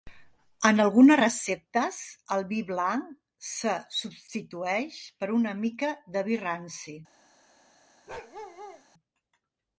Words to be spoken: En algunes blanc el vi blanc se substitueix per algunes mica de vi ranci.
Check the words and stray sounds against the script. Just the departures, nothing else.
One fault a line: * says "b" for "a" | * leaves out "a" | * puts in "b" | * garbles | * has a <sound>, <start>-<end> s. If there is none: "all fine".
* says "receptes" for "blanc"
* says "una" for "algunes"
* has a bark, 8.1-8.8 s